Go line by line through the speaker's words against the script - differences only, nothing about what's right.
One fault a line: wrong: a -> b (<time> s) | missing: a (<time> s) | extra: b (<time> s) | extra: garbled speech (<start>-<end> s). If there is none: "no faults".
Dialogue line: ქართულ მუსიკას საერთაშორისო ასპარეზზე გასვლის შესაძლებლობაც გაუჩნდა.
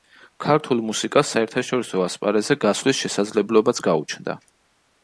no faults